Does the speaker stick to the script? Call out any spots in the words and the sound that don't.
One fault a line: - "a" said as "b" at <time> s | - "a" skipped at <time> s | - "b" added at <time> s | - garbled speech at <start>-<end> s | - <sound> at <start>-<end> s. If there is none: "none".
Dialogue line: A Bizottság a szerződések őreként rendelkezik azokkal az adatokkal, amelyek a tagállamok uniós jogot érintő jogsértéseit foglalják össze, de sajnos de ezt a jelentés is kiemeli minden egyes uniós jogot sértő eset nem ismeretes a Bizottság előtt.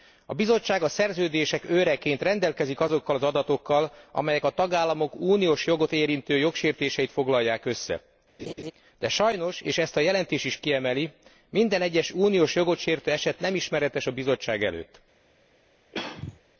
- laugh at 8.4-8.7 s
- "de" said as "és" at 9.6 s
- throat clearing at 15.9-16.4 s